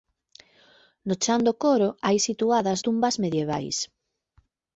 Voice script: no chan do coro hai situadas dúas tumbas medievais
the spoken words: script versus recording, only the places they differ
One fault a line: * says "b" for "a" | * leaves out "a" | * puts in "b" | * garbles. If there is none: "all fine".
* leaves out "dúas"